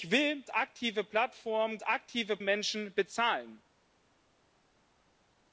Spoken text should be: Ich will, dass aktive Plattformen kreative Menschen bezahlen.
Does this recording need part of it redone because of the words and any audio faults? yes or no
yes